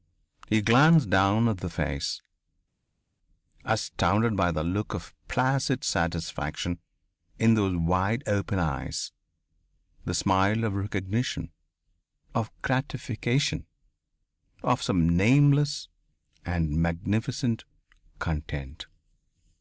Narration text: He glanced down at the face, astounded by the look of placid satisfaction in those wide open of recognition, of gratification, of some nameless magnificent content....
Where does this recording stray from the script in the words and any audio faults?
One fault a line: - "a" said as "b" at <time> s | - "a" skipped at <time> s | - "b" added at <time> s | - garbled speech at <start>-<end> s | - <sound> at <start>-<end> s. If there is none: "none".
- "eyes the smile" added at 8.6 s
- "and" added at 16.4 s